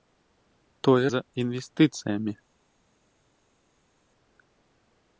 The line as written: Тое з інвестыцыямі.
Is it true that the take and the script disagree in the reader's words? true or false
false